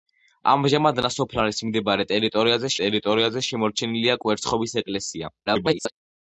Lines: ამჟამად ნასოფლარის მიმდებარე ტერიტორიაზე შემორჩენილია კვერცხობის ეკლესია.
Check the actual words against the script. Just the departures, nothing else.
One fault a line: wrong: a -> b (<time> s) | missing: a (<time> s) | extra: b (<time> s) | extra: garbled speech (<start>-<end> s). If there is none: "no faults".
extra: ტერიტორიაზე (2.8 s)
extra: garbled speech (5.5-5.9 s)